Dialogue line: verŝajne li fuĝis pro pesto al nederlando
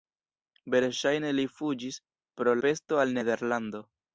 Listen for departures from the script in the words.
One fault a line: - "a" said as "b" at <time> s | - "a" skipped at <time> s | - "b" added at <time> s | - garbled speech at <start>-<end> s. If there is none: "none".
none